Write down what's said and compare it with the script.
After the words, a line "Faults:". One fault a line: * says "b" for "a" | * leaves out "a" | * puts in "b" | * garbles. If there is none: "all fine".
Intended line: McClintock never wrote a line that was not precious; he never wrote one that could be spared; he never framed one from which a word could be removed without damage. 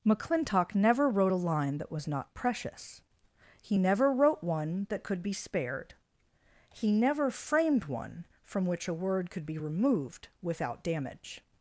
McClintock never wrote a line that was not precious; he never wrote one that could be spared; he never framed one from which a word could be removed without damage.
Faults:
all fine